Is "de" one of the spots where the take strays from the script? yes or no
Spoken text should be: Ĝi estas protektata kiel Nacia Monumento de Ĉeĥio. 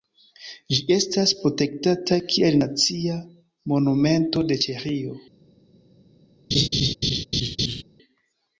no